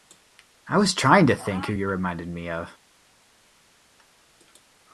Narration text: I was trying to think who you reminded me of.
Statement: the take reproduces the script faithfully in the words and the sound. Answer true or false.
true